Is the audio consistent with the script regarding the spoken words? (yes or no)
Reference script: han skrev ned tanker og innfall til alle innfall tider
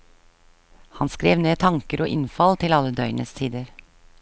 no